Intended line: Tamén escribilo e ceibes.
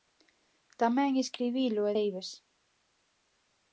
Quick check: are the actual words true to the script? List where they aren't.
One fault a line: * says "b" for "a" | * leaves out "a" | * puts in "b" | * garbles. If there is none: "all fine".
all fine